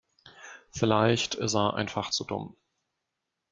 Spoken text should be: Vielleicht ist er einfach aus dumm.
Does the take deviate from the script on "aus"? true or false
true